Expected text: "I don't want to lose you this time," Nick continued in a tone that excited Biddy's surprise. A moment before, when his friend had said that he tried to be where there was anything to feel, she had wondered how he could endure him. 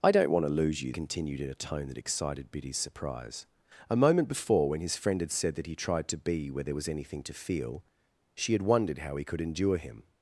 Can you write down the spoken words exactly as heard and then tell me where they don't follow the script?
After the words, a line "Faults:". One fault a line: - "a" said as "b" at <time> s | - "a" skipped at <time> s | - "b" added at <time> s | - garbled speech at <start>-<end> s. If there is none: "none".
"I don't want to lose you continued in a tone that excited Biddy's surprise. A moment before, when his friend had said that he tried to be where there was anything to feel, she had wondered how he could endure him.
Faults:
- "this time Nick" skipped at 0.9 s